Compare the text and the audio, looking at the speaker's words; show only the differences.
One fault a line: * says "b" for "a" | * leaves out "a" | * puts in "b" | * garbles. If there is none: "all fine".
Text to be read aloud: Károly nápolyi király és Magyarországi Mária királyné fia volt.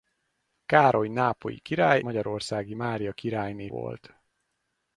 * leaves out "és"
* leaves out "fia"